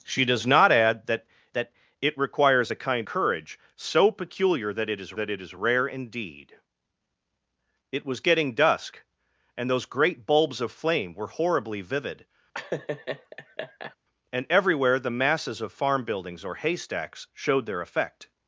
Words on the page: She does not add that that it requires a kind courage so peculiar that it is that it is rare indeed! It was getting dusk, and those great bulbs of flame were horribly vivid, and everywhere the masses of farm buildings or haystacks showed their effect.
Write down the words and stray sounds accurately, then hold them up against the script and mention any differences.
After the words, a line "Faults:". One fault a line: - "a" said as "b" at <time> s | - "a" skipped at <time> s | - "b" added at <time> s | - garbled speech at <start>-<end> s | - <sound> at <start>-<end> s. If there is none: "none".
She does not add that that it requires a kind courage so peculiar that it is that it is rare indeed! It was getting dusk, and those great bulbs of flame were horribly vivid, and everywhere the masses of farm buildings or haystacks showed their effect.
Faults:
- laugh at 12.5-14.0 s